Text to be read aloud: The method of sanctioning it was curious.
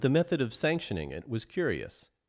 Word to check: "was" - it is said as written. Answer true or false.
true